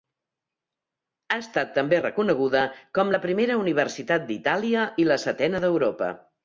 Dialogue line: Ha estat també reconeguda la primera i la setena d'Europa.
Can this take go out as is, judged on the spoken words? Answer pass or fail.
fail